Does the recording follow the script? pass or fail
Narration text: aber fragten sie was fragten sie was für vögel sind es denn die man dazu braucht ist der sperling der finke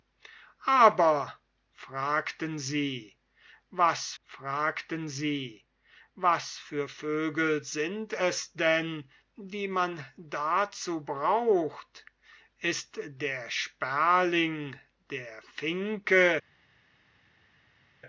pass